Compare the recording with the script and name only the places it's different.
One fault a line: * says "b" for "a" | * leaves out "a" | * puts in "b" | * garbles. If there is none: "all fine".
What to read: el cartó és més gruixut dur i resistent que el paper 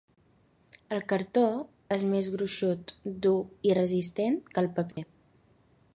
all fine